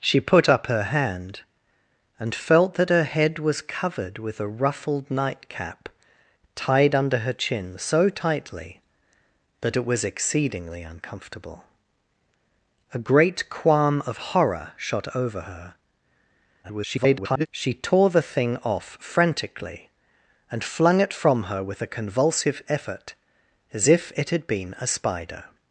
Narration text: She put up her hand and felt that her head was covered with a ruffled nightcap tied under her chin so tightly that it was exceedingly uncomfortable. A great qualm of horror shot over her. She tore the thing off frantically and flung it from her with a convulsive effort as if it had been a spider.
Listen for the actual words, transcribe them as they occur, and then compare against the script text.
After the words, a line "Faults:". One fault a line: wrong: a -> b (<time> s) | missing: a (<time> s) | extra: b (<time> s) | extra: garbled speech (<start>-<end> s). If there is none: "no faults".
She put up her hand and felt that her head was covered with a ruffled nightcap tied under her chin so tightly that it was exceedingly uncomfortable. A great qualm of horror shot over her. [garbled] She tore the thing off frantically and flung it from her with a convulsive effort as if it had been a spider.
Faults:
extra: garbled speech (16.6-17.5 s)